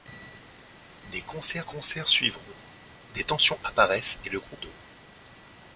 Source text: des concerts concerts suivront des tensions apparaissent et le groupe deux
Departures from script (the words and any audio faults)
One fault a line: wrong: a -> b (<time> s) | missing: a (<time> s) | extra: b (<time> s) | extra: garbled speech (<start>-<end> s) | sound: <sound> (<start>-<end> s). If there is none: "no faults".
no faults